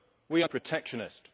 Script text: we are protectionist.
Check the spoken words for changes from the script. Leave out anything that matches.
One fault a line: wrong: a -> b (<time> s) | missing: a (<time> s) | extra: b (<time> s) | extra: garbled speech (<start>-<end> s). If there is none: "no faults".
no faults